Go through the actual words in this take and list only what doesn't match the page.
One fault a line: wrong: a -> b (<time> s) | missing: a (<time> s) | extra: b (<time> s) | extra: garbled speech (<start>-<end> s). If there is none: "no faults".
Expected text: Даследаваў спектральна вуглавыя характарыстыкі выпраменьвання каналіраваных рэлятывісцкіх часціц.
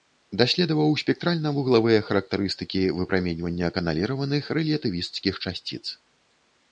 no faults